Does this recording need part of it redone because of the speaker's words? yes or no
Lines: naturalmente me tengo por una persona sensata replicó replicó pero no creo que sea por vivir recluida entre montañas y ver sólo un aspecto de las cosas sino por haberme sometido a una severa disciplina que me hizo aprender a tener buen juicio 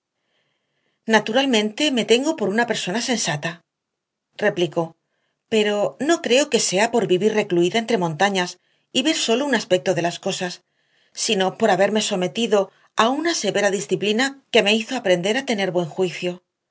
yes